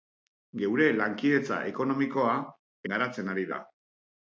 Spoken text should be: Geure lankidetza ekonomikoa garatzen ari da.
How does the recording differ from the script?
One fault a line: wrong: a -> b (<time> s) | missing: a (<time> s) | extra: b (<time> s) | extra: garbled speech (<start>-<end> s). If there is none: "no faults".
no faults